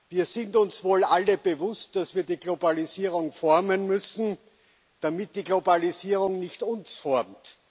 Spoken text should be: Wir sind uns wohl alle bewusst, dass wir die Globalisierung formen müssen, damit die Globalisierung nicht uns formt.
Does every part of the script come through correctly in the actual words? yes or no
yes